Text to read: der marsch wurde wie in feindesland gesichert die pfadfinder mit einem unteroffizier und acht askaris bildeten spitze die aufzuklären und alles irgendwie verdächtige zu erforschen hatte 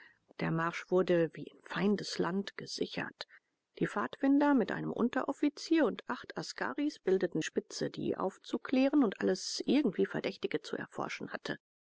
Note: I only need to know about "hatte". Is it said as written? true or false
true